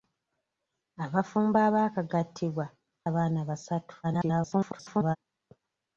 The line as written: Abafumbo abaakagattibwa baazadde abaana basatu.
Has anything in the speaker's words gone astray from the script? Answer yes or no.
yes